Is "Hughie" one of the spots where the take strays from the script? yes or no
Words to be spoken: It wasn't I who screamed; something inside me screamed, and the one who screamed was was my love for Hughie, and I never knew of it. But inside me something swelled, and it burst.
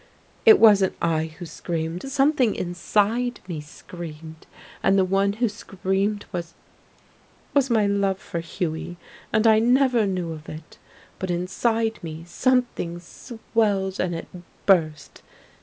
no